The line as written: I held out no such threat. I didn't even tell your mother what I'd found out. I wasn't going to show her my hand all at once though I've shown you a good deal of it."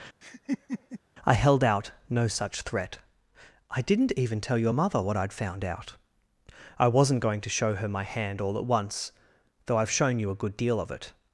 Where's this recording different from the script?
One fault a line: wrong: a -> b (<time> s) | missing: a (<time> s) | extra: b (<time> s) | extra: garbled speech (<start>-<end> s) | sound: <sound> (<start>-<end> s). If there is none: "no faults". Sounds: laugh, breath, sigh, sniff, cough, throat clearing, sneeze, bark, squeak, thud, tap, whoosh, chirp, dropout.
sound: laugh (0.2-1.0 s)